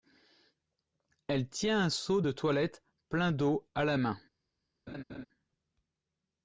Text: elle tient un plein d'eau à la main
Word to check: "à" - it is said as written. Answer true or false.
true